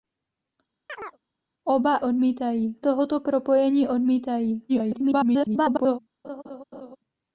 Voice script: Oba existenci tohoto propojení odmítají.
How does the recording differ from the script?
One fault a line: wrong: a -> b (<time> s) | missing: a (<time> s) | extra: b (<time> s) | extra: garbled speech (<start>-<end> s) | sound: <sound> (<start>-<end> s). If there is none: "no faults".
sound: chirp (0.9-1.2 s)
wrong: existenci -> odmítají (2.0 s)
extra: garbled speech (4.7-6.0 s)
sound: laugh (6.2-7.0 s)